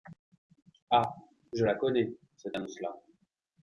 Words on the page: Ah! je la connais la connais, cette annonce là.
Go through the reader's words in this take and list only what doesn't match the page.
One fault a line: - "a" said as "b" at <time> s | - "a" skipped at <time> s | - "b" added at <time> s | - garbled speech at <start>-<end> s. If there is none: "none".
- "la connais" skipped at 2.1 s